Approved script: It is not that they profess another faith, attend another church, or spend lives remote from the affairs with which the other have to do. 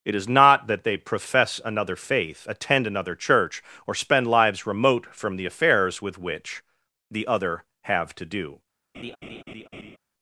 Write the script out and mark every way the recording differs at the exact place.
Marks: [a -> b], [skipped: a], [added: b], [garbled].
It is not that they profess another faith, attend another church, or spend lives remote from the affairs with which the other have to do.